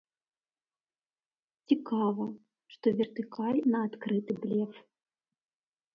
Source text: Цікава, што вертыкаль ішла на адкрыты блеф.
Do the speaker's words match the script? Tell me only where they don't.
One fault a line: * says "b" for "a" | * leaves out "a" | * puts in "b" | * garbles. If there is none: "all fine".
* leaves out "ішла"